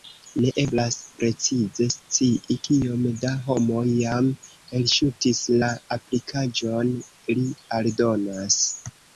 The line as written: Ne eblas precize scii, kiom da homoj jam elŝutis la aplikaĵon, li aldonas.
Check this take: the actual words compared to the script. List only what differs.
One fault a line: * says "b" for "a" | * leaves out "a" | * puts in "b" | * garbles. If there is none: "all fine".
all fine